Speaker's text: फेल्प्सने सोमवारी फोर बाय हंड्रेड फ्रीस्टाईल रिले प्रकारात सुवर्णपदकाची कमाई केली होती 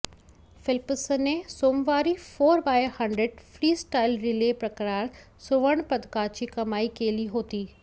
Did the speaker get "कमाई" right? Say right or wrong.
right